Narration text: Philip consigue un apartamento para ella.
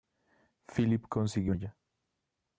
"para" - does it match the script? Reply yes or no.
no